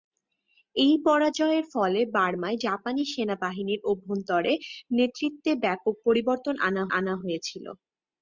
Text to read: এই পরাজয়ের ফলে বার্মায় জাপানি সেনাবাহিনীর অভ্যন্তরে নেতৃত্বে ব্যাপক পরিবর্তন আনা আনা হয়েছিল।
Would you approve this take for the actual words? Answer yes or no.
yes